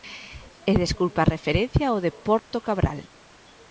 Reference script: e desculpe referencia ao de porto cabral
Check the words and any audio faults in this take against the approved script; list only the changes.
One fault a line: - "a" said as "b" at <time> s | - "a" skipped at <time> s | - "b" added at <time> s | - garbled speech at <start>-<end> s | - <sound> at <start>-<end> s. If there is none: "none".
- "a" added at 1.2 s
- dropout at 2.4-2.5 s